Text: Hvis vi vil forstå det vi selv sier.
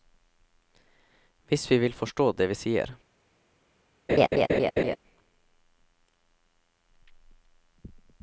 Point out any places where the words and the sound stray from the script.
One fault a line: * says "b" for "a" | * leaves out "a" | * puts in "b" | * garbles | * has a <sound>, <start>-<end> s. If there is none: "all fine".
* leaves out "selv"
* has a laugh, 4.1-5.0 s